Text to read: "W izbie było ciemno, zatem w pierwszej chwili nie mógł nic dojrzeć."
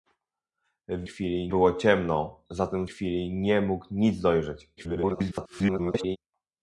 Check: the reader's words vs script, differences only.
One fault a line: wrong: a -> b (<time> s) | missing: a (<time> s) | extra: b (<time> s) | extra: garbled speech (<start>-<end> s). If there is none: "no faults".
wrong: izbie -> chwili (1.0 s)
missing: w pierwszej (2.9 s)
extra: garbled speech (4.8-6.2 s)